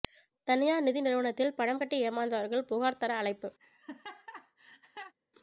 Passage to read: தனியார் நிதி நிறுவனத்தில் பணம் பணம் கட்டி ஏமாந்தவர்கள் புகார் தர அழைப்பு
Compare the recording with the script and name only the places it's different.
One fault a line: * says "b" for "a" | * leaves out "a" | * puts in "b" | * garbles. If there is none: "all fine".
* leaves out "பணம்"